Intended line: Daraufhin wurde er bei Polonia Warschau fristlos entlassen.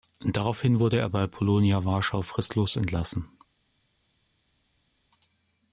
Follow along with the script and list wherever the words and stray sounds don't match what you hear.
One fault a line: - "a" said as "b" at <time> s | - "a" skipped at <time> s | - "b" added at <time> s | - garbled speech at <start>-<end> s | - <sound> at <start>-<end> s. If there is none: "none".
none